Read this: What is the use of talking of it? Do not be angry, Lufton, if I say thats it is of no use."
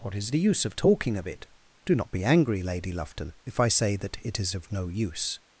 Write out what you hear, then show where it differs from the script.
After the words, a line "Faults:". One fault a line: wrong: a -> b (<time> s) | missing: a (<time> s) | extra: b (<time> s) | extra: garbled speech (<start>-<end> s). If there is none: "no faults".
What is the use of talking of it? Do not be angry, Lady Lufton, if I say that it is of no use."
Faults:
extra: Lady (2.6 s)
wrong: thats -> that (4.0 s)